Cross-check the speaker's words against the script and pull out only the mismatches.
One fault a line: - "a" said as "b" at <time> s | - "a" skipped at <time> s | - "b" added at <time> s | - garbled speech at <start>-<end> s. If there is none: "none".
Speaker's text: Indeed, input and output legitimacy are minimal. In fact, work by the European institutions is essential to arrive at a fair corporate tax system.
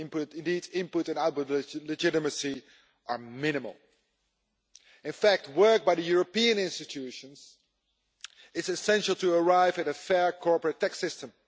none